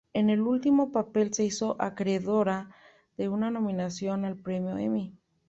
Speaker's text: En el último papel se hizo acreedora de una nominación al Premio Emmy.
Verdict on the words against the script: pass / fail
pass